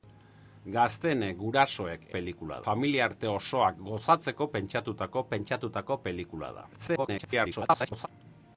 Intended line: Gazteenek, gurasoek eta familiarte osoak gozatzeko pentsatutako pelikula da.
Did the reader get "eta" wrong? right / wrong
wrong